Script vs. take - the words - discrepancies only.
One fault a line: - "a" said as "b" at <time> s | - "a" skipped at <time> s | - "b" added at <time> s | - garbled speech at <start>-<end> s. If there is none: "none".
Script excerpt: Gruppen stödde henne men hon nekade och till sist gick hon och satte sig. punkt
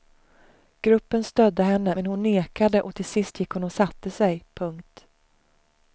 none